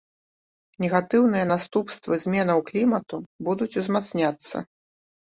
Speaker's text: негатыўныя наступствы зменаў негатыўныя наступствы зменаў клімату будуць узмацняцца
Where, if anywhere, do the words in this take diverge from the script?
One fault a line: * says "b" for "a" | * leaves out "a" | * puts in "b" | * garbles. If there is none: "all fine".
* leaves out "негатыўныя наступствы зменаў"